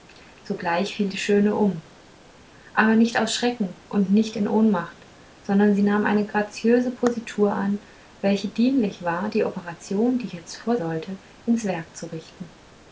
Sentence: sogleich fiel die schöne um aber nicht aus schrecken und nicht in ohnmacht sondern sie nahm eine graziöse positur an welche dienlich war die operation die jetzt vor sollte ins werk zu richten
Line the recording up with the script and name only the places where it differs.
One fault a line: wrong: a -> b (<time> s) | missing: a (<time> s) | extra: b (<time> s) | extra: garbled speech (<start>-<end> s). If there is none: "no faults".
no faults